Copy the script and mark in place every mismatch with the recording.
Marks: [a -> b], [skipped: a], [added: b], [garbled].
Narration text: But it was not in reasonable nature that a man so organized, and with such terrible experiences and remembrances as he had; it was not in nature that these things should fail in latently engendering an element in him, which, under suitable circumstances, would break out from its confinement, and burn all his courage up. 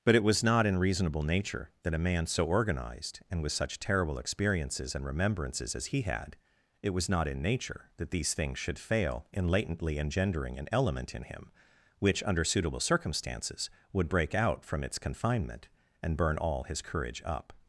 But it was not in reasonable nature that a man so organized, and with such terrible experiences and remembrances as he had; it was not in nature that these things should fail in latently engendering an element in him, which, under suitable circumstances, would break out from its confinement, and burn all his courage up.